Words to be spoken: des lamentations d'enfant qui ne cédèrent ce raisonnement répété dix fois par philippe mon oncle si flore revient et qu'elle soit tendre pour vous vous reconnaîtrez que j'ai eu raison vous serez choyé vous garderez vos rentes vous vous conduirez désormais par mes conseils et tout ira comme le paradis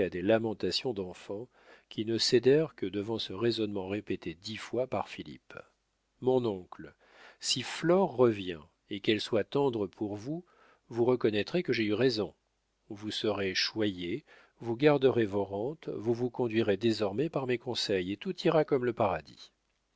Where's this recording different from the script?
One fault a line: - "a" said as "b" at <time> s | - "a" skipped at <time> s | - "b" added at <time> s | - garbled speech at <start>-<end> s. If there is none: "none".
- "que devant" added at 2.8 s